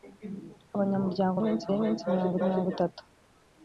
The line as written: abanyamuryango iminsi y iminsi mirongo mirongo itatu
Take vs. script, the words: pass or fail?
pass